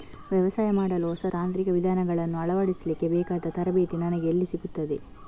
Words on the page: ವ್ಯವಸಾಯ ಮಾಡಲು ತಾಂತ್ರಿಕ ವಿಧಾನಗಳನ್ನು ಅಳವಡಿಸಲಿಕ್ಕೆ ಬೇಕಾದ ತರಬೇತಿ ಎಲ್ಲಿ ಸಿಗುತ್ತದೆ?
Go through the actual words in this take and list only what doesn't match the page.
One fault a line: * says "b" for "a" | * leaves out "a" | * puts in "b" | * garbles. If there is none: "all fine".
* puts in "ಹೊಸ"
* puts in "ನನಗೆ"